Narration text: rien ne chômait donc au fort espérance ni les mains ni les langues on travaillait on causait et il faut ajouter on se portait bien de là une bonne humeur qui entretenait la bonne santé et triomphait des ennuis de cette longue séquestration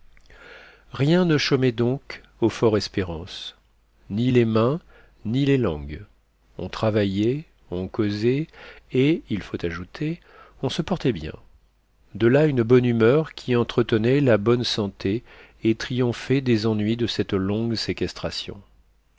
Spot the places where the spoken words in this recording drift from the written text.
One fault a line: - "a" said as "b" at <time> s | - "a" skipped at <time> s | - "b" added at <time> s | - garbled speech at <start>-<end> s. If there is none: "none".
none